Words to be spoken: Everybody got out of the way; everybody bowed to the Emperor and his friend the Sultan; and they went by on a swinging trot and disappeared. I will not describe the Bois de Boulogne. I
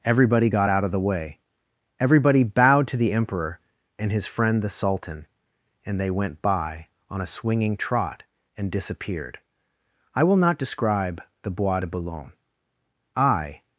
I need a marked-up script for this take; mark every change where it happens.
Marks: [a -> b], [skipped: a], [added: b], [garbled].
Everybody got out of the way; everybody bowed to the Emperor and his friend the Sultan; and they went by on a swinging trot and disappeared. I will not describe the Bois de Boulogne. I